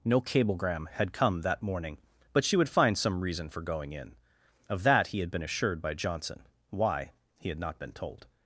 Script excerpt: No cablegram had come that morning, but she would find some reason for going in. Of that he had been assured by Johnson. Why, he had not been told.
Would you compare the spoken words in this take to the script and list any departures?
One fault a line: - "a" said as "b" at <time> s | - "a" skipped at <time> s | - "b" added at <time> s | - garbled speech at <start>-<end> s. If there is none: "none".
none